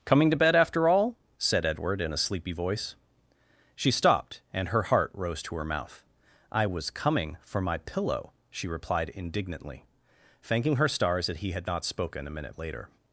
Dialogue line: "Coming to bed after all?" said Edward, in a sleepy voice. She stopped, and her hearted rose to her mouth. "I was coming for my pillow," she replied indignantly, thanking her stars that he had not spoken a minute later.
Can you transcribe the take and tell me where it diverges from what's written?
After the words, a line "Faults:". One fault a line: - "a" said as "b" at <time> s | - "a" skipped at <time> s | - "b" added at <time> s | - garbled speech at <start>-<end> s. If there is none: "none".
"Coming to bed after all?" said Edward, in a sleepy voice. She stopped, and her heart rose to her mouth. "I was coming for my pillow," she replied indignantly, thanking her stars that he had not spoken a minute later.
Faults:
- "hearted" said as "heart" at 4.8 s